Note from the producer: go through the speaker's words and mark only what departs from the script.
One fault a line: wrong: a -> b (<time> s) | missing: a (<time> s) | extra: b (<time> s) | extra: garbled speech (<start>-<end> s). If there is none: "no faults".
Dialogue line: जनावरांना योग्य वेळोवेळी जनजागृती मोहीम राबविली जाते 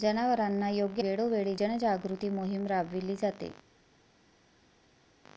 no faults